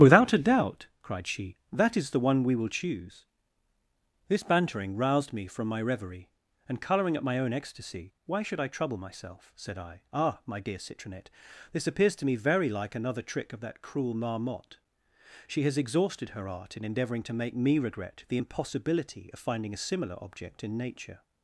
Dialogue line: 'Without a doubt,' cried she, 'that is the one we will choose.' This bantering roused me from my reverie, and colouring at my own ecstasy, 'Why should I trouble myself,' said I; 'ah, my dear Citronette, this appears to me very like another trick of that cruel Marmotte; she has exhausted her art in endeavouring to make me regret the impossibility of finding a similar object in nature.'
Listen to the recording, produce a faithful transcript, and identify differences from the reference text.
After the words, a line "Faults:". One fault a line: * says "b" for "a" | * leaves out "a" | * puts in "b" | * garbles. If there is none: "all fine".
'Without a doubt,' cried she, 'that is the one we will choose.' This bantering roused me from my reverie, and colouring at my own ecstasy, 'Why should I trouble myself,' said I; 'ah, my dear Citronette, this appears to me very like another trick of that cruel Marmotte; she has exhausted her art in endeavouring to make me regret the impossibility of finding a similar object in nature.'
Faults:
all fine